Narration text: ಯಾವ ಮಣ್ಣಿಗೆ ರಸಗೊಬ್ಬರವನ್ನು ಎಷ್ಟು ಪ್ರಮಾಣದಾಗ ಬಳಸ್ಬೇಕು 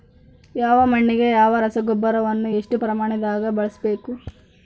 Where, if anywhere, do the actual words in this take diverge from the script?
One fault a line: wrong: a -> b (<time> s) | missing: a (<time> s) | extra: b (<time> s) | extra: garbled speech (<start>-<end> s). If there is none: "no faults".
extra: ಯಾವ (1.3 s)